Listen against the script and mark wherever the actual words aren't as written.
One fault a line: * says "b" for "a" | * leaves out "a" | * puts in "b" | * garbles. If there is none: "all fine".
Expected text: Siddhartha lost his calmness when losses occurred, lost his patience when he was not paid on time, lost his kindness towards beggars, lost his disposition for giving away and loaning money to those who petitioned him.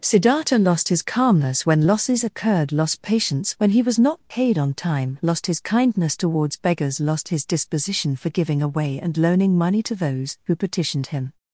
* leaves out "his"